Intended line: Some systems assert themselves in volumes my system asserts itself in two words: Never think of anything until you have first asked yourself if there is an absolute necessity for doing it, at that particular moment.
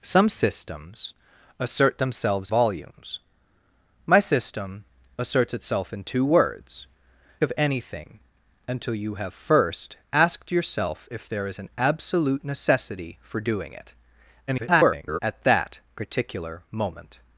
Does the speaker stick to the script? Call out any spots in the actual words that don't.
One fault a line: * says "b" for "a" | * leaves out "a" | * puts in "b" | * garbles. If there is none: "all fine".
* leaves out "in"
* leaves out "Never think"
* garbles